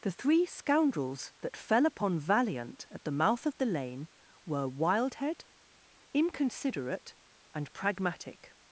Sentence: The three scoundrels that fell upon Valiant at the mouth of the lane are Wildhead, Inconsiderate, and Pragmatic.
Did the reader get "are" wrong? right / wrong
wrong